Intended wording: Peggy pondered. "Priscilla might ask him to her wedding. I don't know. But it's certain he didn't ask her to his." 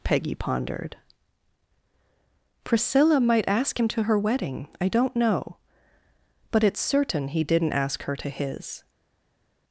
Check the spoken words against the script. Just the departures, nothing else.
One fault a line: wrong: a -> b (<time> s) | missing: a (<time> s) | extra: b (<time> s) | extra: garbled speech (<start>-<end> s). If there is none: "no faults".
no faults